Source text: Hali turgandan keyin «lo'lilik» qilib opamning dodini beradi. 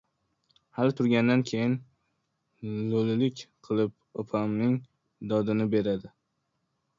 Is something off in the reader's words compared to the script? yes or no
no